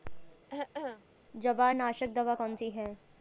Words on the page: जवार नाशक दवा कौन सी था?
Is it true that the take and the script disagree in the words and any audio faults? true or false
true